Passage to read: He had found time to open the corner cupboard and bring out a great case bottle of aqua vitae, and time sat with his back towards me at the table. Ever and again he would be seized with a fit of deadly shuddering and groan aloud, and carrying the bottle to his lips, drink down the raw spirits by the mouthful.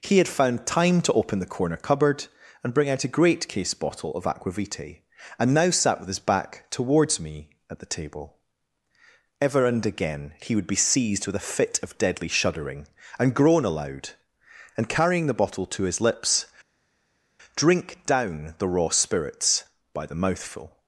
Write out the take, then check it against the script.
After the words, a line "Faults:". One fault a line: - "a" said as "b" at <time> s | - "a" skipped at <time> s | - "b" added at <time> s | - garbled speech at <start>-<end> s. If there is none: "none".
He had found time to open the corner cupboard and bring out a great case bottle of aqua vitae, and now sat with his back towards me at the table. Ever and again he would be seized with a fit of deadly shuddering and groan aloud, and carrying the bottle to his lips, drink down the raw spirits by the mouthful.
Faults:
- "time" said as "now" at 5.5 s